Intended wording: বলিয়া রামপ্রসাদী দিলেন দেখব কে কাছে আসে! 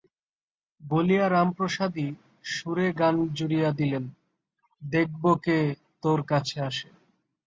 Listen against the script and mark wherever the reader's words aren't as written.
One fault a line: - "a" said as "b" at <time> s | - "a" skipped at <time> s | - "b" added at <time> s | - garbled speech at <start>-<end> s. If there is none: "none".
- "সুরে গান জুড়িয়া" added at 2.5 s
- "তোর" added at 6.0 s